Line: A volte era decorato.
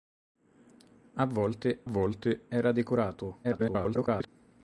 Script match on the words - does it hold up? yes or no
no